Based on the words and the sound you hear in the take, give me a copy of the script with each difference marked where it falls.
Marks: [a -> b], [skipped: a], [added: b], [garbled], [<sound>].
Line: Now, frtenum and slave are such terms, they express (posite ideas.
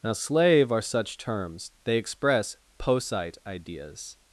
Now, [skipped: frtenum and] slave are such terms, they express (posite ideas.